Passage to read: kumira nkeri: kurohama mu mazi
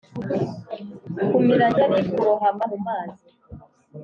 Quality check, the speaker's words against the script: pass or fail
pass